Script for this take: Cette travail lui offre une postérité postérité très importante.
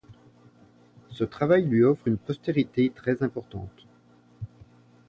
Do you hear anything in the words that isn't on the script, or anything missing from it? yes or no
yes